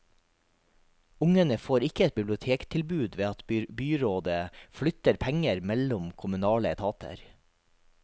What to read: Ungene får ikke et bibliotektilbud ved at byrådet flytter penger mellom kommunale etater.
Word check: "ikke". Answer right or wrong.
right